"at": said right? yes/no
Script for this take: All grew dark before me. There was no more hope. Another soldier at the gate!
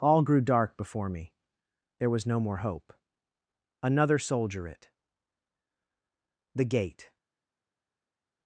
no